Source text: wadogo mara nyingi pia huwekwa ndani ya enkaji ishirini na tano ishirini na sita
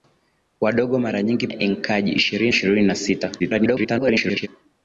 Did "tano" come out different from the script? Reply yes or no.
yes